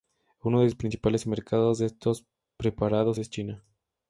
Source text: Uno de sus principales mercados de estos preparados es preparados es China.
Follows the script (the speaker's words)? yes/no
no